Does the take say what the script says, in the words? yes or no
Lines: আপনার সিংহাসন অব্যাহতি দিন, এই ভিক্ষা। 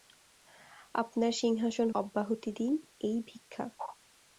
yes